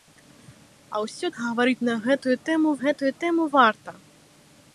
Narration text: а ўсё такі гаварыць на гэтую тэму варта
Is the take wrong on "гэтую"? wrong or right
right